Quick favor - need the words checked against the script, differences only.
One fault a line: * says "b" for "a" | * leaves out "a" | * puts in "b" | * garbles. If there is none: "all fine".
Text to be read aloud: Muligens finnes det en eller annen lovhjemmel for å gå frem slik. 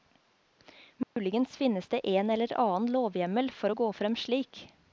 all fine